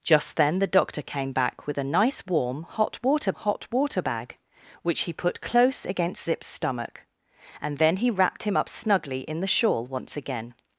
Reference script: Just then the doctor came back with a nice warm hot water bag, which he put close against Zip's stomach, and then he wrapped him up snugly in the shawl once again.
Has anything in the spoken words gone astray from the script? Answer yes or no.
yes